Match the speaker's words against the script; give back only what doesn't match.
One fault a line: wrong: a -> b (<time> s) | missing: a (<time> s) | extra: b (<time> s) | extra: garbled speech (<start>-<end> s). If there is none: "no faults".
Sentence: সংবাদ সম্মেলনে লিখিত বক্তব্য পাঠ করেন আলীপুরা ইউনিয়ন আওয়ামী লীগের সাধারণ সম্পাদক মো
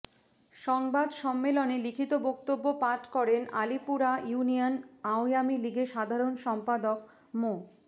no faults